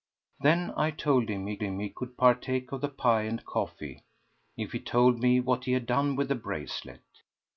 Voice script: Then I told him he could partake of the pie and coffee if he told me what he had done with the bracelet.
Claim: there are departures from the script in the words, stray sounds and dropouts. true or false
true